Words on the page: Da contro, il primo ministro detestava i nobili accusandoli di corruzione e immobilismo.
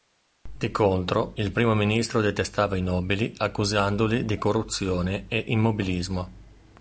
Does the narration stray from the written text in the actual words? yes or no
yes